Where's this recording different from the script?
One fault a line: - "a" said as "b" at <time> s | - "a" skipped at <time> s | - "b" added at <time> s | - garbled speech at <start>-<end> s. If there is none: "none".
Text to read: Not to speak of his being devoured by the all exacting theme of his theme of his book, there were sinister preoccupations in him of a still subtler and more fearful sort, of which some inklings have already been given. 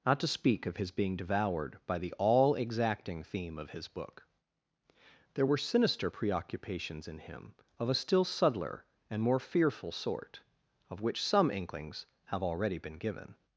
- "theme of his" skipped at 3.9 s